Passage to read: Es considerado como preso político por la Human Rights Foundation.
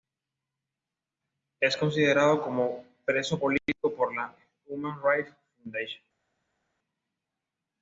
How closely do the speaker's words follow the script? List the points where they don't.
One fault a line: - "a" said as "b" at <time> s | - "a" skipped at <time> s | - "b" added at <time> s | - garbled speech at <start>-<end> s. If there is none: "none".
none